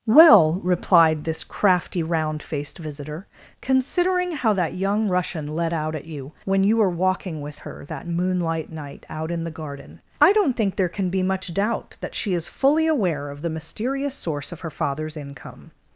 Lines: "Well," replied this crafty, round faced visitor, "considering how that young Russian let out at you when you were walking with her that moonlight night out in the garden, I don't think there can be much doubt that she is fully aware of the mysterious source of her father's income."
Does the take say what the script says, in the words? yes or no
yes